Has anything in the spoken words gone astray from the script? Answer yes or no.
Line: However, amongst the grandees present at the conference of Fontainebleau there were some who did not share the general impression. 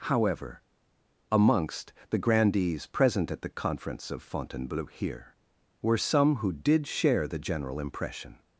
yes